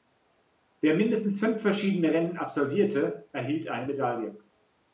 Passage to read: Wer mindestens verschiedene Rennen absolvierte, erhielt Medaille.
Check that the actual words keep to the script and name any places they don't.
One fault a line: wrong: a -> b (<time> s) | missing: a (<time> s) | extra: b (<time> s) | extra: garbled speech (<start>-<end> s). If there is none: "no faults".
extra: fünf (1.4 s)
extra: eine (3.7 s)